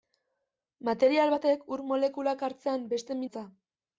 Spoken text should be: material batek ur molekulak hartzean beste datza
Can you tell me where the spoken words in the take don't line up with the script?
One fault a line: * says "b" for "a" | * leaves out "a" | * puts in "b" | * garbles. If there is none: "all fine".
all fine